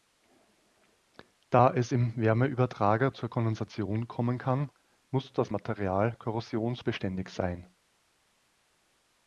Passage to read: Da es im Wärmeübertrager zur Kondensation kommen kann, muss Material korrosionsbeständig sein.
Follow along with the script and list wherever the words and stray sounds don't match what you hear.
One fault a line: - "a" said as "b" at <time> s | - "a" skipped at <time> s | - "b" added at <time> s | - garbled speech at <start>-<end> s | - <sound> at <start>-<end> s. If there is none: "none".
- "das" added at 5.3 s